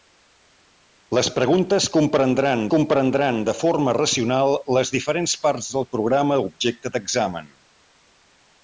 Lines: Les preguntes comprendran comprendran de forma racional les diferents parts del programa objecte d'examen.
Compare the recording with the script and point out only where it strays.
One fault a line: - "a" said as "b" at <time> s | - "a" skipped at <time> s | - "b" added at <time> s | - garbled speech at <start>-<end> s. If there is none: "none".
none